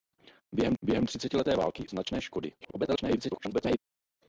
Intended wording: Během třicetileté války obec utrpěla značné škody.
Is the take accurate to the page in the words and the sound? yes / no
no